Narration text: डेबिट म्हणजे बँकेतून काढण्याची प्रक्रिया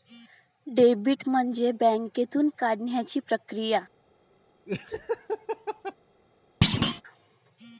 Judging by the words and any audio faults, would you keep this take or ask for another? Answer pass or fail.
fail